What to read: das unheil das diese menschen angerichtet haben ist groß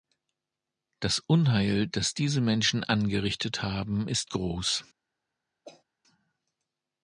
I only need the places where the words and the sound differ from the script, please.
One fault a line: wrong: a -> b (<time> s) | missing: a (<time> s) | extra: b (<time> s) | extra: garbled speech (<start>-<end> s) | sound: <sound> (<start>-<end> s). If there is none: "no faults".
sound: cough (5.6-5.8 s)